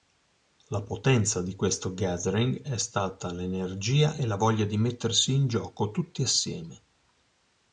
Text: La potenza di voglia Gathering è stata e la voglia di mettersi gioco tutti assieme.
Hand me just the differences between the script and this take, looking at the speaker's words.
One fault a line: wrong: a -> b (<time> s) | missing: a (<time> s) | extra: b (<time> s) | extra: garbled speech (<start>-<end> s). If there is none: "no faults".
wrong: voglia -> questo (1.6 s)
extra: l'energia (3.3 s)
extra: in (5.3 s)